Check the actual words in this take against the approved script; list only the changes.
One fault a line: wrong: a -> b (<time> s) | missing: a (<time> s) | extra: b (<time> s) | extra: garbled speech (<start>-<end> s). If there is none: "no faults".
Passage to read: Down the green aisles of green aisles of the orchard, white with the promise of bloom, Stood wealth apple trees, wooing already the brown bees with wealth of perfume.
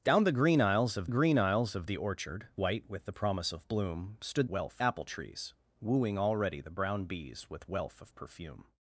no faults